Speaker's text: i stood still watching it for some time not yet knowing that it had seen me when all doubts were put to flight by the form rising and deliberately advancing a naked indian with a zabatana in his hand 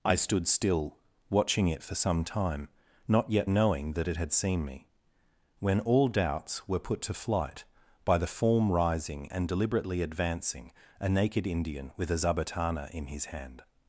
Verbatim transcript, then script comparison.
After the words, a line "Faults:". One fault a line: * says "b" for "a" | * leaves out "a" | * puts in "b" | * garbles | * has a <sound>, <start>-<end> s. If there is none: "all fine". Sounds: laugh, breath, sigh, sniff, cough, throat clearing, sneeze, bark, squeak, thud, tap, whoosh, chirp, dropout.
i stood still watching it for some time not yet knowing that it had seen me when all doubts were put to flight by the form rising and deliberately advancing a naked indian with a zabatana in his hand
Faults:
all fine